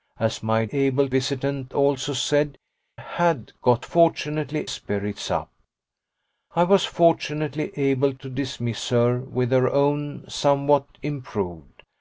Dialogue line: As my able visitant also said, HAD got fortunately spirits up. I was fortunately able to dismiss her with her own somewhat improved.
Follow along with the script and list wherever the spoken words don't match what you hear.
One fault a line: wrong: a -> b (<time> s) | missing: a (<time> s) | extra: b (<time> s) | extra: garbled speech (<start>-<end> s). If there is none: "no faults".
no faults